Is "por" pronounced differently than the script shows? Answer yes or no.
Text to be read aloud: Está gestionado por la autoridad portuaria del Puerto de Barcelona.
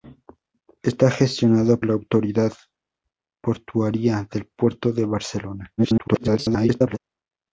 yes